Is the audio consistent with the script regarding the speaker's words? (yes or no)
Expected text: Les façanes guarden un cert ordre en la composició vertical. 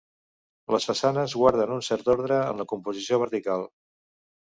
yes